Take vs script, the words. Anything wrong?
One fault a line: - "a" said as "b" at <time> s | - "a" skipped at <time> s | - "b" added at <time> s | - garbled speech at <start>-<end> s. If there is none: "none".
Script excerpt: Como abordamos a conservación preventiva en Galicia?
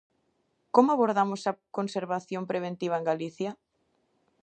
none